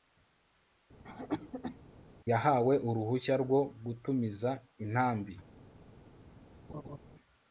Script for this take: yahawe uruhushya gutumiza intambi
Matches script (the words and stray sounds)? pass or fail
fail